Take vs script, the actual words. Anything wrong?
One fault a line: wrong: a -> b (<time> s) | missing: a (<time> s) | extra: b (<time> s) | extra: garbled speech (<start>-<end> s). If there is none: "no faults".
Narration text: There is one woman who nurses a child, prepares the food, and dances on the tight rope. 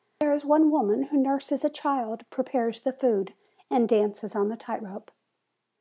no faults